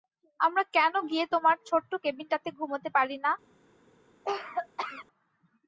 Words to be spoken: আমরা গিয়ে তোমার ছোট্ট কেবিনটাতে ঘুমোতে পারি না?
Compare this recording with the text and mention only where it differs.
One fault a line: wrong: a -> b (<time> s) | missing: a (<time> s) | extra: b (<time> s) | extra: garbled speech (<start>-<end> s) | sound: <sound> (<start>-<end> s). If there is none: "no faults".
extra: কেন (0.8 s)
sound: cough (4.2-5.1 s)